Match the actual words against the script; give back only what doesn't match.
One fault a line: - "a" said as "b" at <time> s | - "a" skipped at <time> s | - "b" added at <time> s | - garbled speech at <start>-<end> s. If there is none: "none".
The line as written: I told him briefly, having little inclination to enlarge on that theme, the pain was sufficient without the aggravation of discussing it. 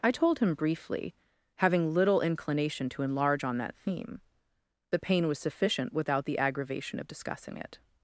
none